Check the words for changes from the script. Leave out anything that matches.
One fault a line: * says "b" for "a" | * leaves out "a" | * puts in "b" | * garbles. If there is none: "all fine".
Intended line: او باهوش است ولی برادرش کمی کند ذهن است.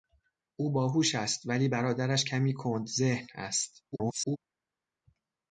* garbles